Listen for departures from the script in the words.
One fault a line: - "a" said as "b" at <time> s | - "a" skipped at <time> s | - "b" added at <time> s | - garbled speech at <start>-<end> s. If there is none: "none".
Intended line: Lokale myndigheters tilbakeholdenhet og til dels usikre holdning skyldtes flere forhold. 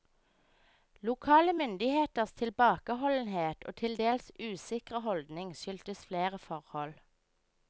none